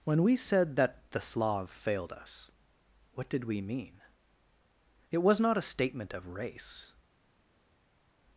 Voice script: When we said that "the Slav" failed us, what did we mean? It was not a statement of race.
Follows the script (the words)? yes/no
yes